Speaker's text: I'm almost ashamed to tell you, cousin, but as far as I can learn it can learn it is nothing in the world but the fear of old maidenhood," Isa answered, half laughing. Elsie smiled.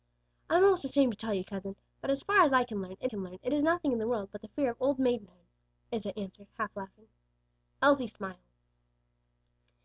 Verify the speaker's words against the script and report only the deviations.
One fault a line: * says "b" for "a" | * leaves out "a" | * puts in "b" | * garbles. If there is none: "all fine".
all fine